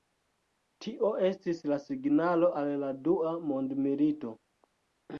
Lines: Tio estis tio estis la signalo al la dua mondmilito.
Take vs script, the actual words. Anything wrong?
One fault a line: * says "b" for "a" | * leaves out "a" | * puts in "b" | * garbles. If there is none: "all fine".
* leaves out "tio estis"